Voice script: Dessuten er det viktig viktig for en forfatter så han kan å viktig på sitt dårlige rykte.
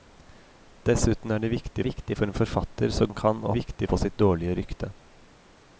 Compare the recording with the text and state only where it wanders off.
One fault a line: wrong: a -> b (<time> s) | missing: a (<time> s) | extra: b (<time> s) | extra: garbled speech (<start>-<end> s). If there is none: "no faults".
no faults